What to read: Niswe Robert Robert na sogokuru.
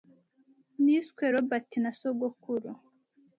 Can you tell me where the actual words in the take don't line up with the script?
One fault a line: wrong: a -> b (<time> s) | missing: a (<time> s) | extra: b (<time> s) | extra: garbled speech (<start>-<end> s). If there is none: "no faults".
missing: Robert (1.7 s)